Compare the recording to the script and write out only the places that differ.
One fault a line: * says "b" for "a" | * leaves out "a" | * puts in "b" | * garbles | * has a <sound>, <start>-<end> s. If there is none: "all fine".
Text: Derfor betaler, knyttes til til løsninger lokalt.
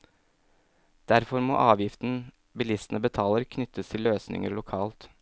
* puts in "må avgiften bilistene"
* leaves out "til"